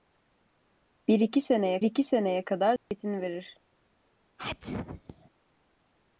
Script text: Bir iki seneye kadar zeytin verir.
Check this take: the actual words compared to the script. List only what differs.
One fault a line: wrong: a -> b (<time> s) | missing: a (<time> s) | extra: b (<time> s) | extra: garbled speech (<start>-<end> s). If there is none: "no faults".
extra: iki seneye (1.8 s)